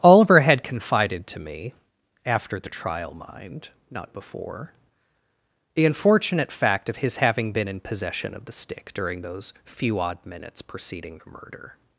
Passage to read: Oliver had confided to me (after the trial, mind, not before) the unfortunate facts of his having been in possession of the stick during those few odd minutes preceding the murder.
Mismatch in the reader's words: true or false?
true